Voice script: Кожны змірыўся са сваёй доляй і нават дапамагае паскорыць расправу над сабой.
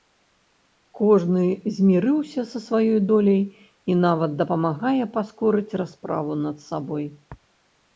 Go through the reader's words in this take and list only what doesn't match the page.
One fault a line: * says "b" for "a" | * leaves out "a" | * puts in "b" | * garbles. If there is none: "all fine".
all fine